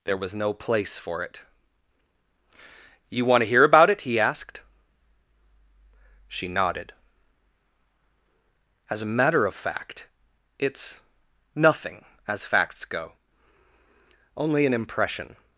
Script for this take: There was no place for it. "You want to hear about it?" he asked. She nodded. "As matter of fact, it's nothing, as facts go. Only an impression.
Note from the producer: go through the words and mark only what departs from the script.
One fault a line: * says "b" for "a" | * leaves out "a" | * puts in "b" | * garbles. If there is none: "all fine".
* puts in "a"